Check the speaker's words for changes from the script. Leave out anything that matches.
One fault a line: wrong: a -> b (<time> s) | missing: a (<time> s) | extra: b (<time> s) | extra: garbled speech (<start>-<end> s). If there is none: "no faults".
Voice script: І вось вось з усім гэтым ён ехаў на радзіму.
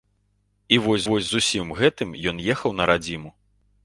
no faults